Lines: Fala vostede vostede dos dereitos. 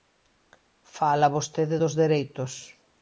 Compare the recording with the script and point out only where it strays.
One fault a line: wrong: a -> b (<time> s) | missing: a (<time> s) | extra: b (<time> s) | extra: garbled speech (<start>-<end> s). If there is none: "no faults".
missing: vostede (1.8 s)